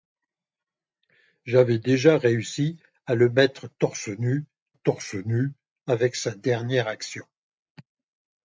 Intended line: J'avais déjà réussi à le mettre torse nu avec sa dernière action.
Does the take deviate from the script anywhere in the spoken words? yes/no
yes